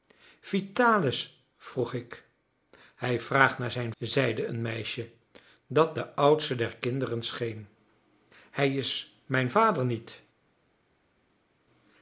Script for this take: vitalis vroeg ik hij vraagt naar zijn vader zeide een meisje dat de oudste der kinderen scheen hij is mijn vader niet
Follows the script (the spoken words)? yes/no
no